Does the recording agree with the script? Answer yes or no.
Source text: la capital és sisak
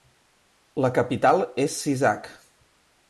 yes